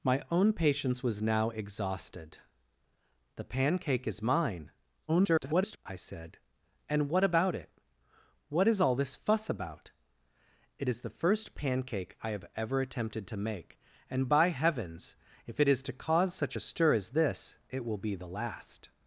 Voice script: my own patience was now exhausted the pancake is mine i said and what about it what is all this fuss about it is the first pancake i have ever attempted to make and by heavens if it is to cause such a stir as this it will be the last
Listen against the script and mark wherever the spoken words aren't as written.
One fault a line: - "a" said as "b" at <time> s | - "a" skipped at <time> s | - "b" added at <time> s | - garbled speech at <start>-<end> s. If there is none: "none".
- garbled speech at 5.1-5.8 s